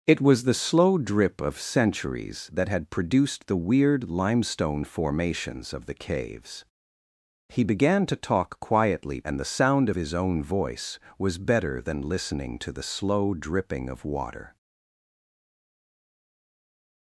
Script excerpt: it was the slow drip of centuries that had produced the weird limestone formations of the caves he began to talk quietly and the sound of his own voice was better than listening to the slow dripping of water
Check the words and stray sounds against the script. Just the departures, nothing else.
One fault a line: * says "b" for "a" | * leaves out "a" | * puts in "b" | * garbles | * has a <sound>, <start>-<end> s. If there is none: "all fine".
all fine